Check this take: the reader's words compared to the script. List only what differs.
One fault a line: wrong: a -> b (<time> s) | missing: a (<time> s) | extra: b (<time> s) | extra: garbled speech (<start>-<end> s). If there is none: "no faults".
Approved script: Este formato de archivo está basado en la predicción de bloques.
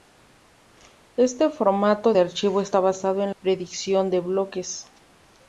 missing: la (3.3 s)